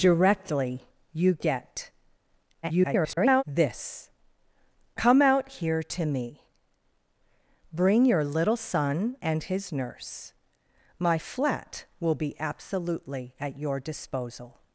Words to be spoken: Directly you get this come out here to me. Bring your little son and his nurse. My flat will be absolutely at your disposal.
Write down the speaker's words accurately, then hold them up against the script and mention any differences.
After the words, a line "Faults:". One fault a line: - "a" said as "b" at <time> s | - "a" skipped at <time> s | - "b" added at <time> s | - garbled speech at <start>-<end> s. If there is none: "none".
Directly you get [garbled] this come out here to me. Bring your little son and his nurse. My flat will be absolutely at your disposal.
Faults:
- garbled speech at 2.6-3.4 s